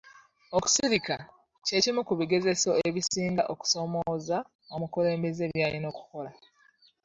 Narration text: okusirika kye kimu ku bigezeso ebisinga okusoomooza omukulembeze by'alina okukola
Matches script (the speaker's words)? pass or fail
pass